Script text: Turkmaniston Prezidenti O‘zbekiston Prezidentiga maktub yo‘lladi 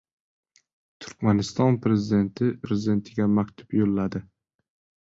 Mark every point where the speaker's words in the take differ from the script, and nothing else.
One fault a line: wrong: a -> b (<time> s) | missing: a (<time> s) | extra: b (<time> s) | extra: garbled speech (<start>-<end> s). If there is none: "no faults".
missing: O‘zbekiston (2.5 s)